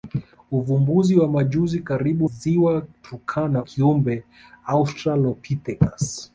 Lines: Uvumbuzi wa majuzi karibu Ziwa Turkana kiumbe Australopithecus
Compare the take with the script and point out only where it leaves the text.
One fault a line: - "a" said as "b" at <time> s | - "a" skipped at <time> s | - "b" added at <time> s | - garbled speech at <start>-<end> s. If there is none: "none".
none